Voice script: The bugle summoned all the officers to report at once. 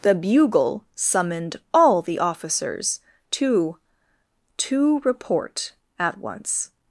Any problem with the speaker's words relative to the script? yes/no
yes